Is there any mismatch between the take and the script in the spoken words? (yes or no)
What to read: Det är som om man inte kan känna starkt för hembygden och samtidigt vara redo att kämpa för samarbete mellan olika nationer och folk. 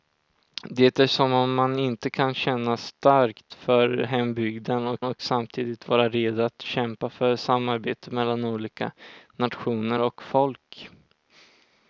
yes